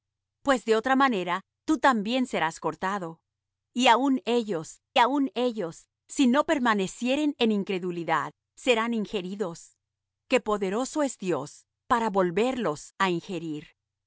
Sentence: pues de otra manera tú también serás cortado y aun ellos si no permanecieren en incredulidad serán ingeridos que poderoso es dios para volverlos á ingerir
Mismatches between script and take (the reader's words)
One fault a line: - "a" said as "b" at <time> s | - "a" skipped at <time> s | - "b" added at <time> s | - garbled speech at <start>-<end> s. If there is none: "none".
- "aun ellos" added at 5.0 s